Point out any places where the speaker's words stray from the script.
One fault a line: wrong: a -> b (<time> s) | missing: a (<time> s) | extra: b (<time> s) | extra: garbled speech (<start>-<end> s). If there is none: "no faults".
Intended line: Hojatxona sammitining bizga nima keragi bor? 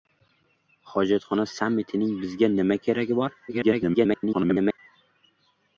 extra: garbled speech (3.5-4.8 s)